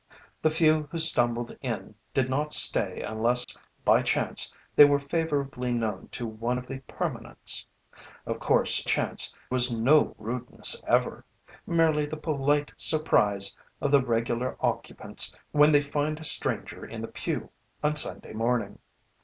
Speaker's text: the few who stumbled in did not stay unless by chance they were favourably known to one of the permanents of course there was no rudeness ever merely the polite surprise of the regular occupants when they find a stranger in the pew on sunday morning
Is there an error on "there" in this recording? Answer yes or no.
yes